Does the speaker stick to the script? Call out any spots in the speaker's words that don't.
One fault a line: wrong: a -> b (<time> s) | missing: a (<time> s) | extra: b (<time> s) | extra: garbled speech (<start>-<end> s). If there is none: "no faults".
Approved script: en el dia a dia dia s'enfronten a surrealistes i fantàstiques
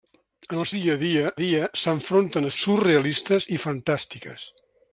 no faults